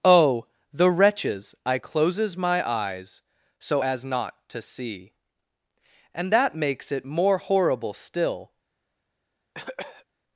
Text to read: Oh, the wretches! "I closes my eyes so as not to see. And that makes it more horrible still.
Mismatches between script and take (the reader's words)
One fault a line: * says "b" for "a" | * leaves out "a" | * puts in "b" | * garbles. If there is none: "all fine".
all fine